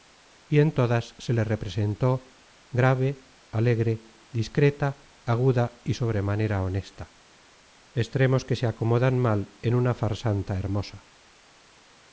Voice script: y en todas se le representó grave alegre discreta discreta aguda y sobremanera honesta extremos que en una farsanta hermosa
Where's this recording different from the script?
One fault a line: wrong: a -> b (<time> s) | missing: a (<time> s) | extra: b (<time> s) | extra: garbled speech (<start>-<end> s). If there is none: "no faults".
missing: discreta (5.2 s)
extra: se acomodan mal (8.5 s)